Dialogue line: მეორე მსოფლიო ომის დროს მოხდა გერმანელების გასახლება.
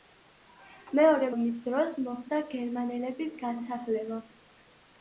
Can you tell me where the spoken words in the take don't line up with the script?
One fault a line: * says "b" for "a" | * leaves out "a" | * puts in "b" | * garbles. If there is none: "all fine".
* leaves out "მსოფლიო"